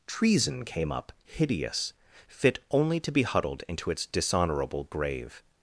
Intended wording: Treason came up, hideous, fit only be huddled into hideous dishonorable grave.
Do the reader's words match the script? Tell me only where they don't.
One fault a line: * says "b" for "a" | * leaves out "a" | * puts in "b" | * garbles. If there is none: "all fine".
* puts in "to"
* says "its" for "hideous"